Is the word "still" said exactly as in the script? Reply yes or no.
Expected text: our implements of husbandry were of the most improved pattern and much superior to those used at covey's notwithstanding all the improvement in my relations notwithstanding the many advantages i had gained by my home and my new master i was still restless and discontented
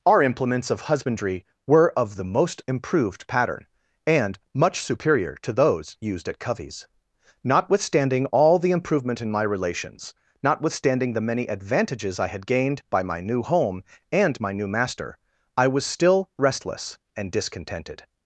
yes